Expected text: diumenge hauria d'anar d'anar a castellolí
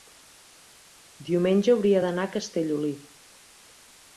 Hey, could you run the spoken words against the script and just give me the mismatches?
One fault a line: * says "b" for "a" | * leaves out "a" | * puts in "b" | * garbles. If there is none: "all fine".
* leaves out "d'anar"